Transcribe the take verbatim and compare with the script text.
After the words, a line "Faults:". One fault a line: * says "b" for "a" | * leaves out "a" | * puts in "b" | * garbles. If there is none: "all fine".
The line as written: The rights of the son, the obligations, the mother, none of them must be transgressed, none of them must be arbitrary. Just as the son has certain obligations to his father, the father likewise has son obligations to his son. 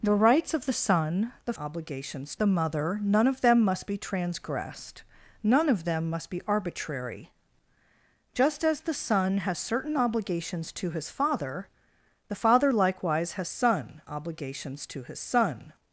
The rights of the son, the obligations, the mother, none of them must be transgressed, none of them must be arbitrary. Just as the son has certain obligations to his father, the father likewise has son obligations to his son.
Faults:
all fine